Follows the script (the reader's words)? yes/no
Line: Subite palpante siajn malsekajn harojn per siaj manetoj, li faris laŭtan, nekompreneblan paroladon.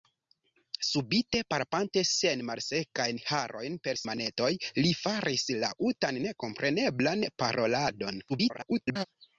no